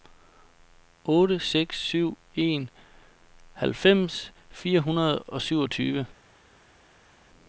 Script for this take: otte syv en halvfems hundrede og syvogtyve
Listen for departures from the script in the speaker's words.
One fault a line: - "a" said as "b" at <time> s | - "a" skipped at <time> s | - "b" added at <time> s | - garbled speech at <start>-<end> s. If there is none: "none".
- "seks" added at 1.4 s
- "fire" added at 4.5 s